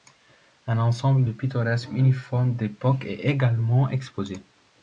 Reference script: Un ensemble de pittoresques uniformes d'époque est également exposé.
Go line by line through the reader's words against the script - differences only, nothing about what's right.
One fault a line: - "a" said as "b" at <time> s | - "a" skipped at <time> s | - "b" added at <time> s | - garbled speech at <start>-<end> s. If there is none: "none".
none